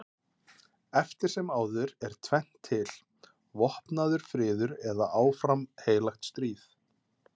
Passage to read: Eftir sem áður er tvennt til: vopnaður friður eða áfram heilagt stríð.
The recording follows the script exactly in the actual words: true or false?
true